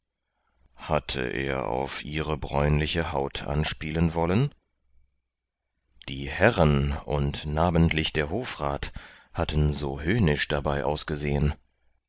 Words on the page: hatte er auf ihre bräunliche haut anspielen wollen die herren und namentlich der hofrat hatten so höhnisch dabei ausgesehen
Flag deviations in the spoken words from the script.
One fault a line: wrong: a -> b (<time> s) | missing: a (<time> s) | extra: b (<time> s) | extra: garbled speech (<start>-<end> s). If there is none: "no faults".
no faults